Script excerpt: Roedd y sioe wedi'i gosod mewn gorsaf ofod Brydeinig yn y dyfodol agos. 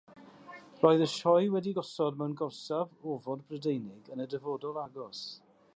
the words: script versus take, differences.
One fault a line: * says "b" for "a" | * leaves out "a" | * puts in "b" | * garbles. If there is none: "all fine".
all fine